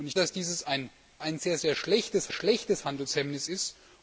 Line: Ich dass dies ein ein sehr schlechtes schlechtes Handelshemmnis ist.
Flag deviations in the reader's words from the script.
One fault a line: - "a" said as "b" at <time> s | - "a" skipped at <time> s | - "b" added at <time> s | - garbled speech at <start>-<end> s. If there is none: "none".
none